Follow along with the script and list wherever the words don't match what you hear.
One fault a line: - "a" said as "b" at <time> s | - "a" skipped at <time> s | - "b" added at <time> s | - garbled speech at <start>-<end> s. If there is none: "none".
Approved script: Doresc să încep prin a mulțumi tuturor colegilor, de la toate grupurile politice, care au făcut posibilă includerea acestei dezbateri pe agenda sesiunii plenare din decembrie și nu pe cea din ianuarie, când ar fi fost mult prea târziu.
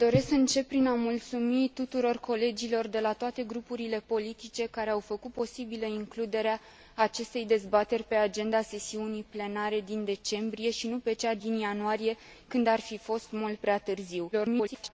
- garbled speech at 14.3-14.9 s